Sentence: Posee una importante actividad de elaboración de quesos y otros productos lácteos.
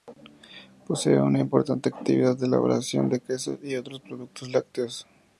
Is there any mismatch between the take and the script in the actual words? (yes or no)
no